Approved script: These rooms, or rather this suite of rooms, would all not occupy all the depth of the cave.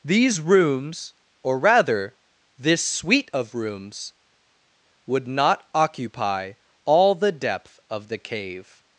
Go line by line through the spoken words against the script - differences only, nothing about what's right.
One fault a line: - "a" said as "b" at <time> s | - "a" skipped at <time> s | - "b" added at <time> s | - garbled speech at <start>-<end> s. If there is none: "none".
- "all" skipped at 5.3 s